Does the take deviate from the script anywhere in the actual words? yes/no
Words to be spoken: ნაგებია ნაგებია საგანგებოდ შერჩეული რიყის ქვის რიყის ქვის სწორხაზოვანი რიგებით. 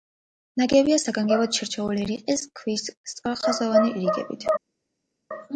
yes